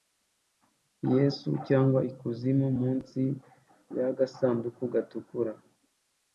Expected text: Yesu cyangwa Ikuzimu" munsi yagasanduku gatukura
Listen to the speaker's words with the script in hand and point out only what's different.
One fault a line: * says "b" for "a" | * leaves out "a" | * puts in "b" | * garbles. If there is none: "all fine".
all fine